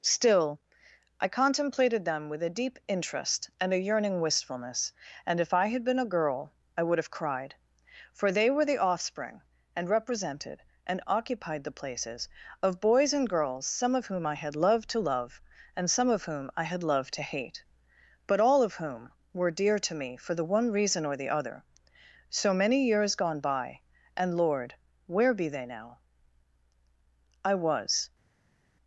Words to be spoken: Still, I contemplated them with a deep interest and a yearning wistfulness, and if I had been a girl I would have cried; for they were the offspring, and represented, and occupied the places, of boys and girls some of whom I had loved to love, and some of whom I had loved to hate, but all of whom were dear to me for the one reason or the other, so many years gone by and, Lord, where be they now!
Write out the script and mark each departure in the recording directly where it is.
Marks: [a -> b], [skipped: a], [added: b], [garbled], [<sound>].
Still, I contemplated them with a deep interest and a yearning wistfulness, and if I had been a girl I would have cried; for they were the offspring, and represented, and occupied the places, of boys and girls some of whom I had loved to love, and some of whom I had loved to hate, but all of whom were dear to me for the one reason or the other, so many years gone by and, Lord, where be they now! [added: I was]